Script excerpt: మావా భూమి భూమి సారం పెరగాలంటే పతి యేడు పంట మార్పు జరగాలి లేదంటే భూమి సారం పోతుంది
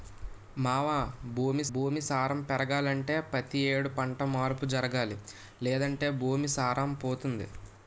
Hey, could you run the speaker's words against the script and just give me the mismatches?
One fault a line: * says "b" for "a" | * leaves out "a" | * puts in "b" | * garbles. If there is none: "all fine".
all fine